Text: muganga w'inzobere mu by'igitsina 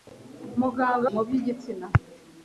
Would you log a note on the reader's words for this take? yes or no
yes